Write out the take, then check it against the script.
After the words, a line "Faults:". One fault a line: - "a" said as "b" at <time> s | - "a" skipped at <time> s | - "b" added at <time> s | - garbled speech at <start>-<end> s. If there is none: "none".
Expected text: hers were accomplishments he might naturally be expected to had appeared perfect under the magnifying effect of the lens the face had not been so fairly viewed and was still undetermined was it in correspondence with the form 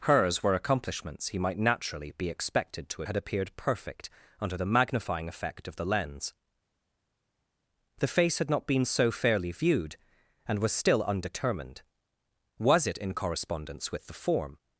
hers were accomplishments he might naturally be expected to had appeared perfect under the magnifying effect of the lens the face had not been so fairly viewed and was still undetermined was it in correspondence with the form
Faults:
none